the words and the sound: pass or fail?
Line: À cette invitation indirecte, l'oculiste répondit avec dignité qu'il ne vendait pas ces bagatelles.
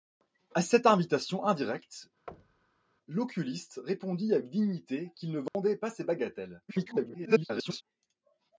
fail